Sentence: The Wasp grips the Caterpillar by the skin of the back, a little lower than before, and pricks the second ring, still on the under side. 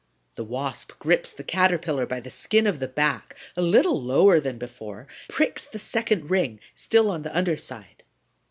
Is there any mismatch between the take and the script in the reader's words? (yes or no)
yes